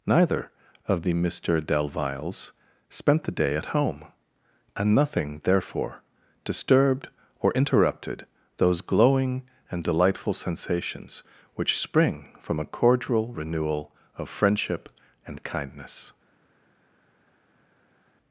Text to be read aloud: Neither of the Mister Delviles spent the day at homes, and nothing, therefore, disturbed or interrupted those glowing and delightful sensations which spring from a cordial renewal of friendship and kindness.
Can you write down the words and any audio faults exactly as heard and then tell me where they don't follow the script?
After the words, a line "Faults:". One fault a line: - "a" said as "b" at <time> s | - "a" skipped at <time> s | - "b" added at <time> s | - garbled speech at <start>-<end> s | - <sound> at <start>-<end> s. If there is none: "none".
Neither of the Mister Delviles spent the day at home, and nothing, therefore, disturbed or interrupted those glowing and delightful sensations which spring from a cordial renewal of friendship and kindness.
Faults:
- "homes" said as "home" at 3.7 s